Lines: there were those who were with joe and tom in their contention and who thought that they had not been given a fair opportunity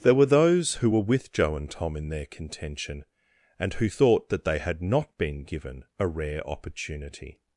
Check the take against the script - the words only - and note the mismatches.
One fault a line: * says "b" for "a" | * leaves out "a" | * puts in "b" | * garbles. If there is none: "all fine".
* says "rare" for "fair"